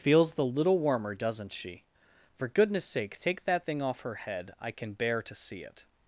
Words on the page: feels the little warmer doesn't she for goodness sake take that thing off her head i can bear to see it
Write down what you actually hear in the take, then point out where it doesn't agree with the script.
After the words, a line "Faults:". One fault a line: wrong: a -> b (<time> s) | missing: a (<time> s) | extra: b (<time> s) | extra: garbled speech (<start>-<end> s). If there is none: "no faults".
feels the little warmer doesn't she for goodness sake take that thing off her head i can bear to see it
Faults:
no faults